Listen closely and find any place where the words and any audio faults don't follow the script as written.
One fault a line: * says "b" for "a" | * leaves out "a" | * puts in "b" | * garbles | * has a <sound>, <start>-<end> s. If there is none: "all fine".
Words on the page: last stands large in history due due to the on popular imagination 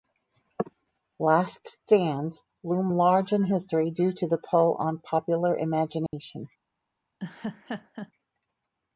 * puts in "loom"
* leaves out "due"
* puts in "pull"
* has a dropout, 6.1-6.1 s
* has a laugh, 7.2-8.1 s